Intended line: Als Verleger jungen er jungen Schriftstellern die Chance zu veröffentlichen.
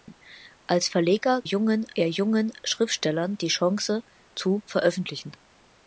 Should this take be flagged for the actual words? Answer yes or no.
no